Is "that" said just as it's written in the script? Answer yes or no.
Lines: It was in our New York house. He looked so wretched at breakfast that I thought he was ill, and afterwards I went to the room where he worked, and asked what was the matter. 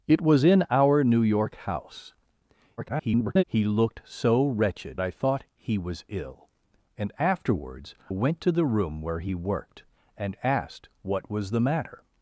no